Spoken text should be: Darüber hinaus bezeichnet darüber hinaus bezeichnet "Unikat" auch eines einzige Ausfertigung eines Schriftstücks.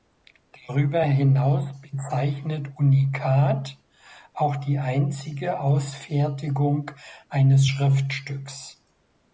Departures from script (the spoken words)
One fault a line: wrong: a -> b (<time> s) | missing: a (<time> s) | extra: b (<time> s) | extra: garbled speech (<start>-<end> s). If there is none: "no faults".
missing: darüber hinaus bezeichnet (2.7 s)
wrong: eines -> die (4.6 s)